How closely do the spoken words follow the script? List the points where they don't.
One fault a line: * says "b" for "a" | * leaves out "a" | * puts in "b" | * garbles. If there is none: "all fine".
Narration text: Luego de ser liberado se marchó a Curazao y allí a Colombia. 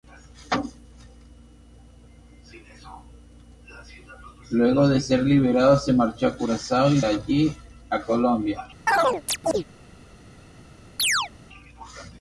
all fine